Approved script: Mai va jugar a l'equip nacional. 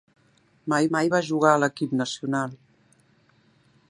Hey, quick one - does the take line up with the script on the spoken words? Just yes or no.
no